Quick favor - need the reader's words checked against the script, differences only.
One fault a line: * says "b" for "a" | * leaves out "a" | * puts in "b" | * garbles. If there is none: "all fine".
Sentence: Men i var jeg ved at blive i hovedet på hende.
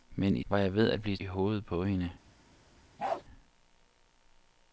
all fine